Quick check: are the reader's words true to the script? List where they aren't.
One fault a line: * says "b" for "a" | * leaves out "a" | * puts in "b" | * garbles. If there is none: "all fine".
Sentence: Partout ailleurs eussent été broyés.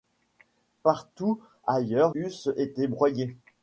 all fine